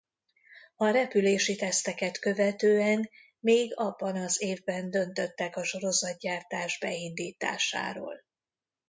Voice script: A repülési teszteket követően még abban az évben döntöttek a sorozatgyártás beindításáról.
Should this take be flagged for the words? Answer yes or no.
no